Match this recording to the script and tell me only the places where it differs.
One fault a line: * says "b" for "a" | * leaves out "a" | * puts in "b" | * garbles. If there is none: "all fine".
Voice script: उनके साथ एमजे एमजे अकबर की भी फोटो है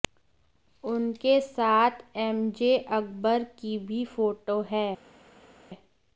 * leaves out "एमजे"